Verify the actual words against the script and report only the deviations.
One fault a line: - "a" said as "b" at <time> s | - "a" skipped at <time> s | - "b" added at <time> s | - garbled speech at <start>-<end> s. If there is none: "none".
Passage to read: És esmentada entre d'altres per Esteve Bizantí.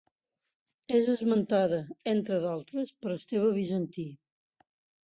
none